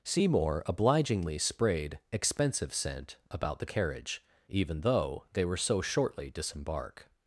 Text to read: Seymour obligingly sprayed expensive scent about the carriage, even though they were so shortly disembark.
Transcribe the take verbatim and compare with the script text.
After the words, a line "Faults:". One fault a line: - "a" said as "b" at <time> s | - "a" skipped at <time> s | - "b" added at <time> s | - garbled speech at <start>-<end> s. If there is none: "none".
Seymour obligingly sprayed expensive scent about the carriage, even though they were so shortly disembark.
Faults:
none